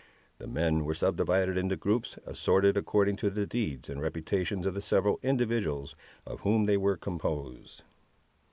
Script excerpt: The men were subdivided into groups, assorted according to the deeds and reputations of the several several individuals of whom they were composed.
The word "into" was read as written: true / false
true